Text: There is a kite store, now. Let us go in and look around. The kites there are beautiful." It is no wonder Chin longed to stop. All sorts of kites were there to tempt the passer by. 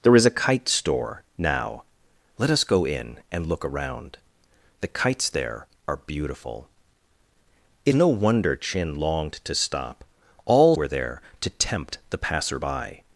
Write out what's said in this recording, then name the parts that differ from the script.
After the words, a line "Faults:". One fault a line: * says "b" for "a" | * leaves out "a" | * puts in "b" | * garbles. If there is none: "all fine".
There is a kite store, now. Let us go in and look around. The kites there are beautiful." It no wonder Chin longed to stop. All were there to tempt the passer by.
Faults:
* leaves out "is"
* leaves out "sorts of kites"